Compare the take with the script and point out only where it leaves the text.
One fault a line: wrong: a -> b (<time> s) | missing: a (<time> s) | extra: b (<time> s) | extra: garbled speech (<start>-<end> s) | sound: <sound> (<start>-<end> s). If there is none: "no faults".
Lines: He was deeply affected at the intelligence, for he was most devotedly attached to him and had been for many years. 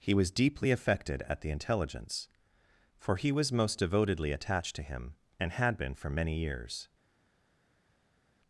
no faults